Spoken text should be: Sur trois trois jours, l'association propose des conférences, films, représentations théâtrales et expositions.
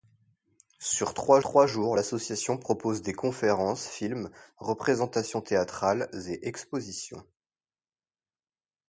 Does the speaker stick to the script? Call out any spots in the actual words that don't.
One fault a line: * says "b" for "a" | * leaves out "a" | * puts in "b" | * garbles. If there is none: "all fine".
all fine